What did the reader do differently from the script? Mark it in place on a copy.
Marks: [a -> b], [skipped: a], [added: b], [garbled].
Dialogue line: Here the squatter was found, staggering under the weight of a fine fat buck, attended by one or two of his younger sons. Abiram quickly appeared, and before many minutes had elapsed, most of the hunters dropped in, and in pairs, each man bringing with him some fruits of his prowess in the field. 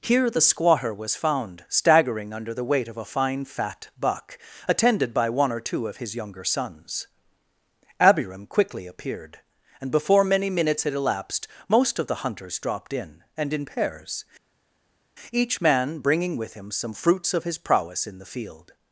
Here the squatter was found, staggering under the weight of a fine fat buck, attended by one or two of his younger sons. Abiram quickly appeared, and before many minutes had elapsed, most of the hunters dropped in, and in pairs, each man bringing with him some fruits of his prowess in the field.